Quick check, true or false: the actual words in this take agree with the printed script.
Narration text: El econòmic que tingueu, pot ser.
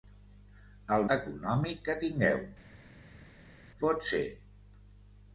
true